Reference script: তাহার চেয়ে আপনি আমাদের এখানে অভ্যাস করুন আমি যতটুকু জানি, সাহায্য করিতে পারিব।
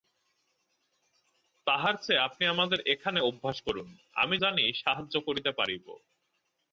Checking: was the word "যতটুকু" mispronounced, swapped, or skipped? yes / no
yes